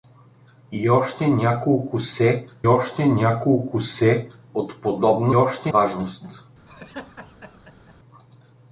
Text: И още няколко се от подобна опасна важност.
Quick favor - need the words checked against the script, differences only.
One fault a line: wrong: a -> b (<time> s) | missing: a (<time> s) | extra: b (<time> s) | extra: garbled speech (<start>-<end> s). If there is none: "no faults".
extra: още няколко се (2.7 s)
wrong: опасна -> още (5.3 s)